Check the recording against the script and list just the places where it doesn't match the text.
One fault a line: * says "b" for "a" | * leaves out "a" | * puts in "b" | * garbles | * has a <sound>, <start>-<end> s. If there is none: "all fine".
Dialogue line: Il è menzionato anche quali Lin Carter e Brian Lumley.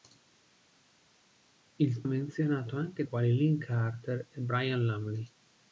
all fine